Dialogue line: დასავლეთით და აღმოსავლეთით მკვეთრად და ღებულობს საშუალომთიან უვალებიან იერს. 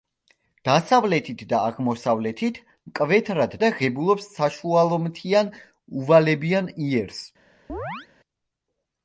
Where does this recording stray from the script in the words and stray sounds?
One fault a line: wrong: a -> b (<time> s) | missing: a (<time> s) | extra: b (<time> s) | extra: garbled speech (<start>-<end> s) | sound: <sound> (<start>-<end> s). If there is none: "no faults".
sound: chirp (7.7-8.1 s)